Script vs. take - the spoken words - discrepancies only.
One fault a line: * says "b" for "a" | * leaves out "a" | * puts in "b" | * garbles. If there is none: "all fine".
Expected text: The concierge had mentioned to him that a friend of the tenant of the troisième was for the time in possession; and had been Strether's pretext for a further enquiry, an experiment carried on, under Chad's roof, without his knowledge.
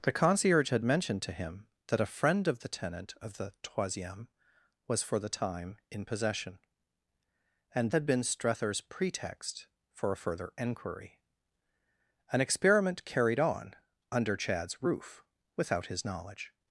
all fine